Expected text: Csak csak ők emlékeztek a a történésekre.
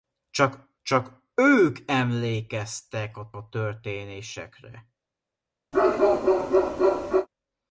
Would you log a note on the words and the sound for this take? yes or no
yes